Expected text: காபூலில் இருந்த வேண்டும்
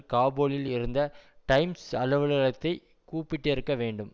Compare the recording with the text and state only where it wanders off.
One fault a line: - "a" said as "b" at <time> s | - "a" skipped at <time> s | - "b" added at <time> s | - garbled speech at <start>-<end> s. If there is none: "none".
- "டைம்ஸ் அலுவலகத்தை கூப்பிட்டிருக்க" added at 1.5 s